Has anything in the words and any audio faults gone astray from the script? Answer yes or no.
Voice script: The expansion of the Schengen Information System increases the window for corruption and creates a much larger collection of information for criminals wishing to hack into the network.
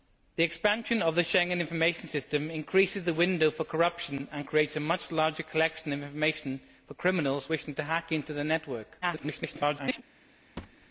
yes